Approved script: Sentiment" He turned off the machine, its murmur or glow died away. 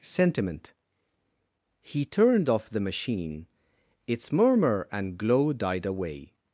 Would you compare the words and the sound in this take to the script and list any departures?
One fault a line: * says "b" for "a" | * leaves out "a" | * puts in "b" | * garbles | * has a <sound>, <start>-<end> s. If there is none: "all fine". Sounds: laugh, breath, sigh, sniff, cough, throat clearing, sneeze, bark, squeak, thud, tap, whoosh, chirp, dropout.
* says "and" for "or"